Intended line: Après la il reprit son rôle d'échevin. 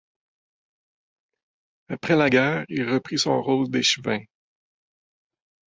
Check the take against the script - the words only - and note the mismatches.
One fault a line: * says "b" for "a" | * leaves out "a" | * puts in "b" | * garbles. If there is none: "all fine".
* puts in "guerre"